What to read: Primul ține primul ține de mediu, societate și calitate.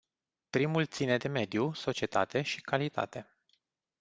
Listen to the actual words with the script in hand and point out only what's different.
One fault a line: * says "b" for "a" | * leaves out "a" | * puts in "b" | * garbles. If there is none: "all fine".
* leaves out "primul ține"